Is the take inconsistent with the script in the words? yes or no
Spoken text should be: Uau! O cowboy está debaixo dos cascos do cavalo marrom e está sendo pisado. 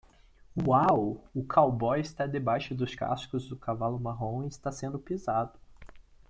no